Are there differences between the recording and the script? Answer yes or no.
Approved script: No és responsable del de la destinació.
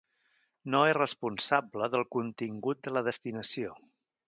yes